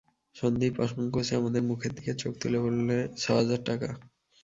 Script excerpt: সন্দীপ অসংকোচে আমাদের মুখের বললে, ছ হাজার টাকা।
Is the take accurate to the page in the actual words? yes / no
no